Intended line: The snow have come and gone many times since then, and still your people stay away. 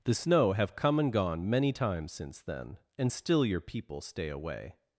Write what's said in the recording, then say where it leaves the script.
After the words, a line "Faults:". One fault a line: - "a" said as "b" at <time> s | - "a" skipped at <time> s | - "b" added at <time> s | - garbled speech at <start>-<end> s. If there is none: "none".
The snow have come and gone many times since then, and still your people stay away.
Faults:
none